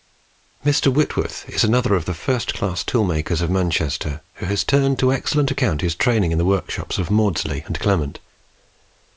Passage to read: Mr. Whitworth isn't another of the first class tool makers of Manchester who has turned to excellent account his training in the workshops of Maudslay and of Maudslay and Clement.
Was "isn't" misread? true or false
true